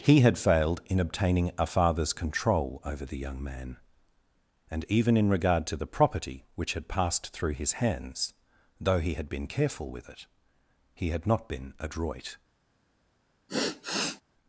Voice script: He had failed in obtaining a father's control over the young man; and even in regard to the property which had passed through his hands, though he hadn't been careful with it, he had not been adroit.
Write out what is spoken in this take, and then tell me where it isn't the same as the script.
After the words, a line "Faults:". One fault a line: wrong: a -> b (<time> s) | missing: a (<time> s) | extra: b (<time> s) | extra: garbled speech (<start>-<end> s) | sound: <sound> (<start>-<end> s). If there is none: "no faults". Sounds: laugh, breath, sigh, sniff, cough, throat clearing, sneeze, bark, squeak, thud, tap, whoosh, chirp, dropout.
He had failed in obtaining a father's control over the young man; and even in regard to the property which had passed through his hands, though he had been careful with it, he had not been adroit.
Faults:
wrong: hadn't -> had (9.1 s)
sound: sigh (13.5-14.2 s)